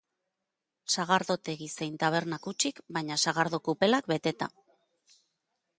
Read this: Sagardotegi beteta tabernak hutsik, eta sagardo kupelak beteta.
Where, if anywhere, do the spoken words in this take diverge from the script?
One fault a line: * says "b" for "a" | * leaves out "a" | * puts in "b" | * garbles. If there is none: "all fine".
* says "zein" for "beteta"
* says "baina" for "eta"